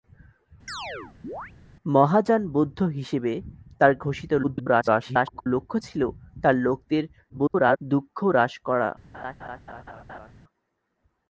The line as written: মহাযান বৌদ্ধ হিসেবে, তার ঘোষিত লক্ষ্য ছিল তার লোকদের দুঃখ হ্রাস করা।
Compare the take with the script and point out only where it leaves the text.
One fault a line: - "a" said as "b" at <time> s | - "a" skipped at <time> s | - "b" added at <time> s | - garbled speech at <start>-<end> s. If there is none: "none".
- garbled speech at 4.4-5.5 s
- garbled speech at 7.3-7.8 s